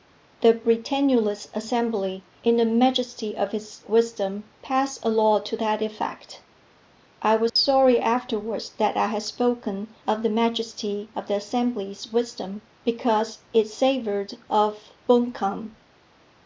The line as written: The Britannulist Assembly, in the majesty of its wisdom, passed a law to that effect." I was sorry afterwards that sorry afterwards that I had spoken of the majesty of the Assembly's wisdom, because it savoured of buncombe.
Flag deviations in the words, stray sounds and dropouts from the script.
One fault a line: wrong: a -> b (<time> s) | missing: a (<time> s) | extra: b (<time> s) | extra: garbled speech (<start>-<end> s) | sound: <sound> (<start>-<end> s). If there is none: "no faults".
sound: dropout (7.5-7.6 s)
missing: sorry afterwards that (9.0 s)